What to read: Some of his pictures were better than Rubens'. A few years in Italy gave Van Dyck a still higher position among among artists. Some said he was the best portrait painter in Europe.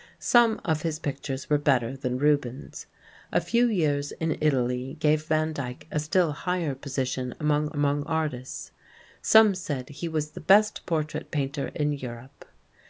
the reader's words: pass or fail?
pass